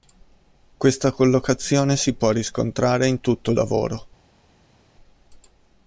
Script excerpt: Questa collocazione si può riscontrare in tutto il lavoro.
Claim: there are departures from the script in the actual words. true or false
false